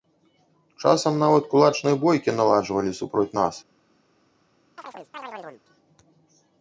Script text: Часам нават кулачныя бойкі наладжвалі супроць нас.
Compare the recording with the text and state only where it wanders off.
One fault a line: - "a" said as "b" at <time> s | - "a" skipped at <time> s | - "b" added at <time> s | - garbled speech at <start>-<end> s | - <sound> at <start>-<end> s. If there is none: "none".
- chirp at 4.8-5.6 s